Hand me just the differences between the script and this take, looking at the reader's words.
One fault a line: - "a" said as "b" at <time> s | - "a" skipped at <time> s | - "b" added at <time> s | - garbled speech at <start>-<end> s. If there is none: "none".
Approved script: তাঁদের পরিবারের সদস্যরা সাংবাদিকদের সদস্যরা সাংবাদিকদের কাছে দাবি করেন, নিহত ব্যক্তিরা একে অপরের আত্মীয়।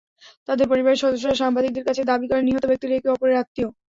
- "সদস্যরা সাংবাদিকদের" skipped at 1.9 s